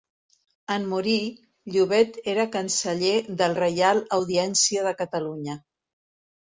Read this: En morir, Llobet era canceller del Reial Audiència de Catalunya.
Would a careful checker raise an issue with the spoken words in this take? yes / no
no